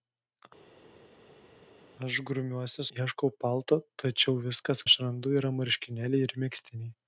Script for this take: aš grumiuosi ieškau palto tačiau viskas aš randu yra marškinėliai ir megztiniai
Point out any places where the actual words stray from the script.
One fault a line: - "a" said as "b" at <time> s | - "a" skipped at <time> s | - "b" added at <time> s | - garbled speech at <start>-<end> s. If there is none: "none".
none